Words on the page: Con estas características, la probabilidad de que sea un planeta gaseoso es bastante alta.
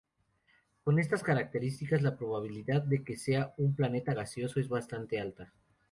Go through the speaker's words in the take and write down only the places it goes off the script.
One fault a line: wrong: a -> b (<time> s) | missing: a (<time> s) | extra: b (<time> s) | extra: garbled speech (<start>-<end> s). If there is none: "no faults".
no faults